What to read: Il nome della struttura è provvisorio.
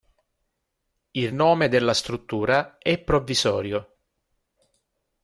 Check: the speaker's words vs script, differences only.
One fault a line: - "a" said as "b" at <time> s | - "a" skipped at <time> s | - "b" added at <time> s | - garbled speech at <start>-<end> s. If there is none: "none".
none